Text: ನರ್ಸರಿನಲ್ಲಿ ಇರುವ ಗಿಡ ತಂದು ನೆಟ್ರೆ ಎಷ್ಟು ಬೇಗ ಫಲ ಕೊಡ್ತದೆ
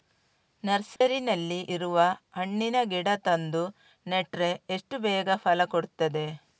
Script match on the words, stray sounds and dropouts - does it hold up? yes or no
no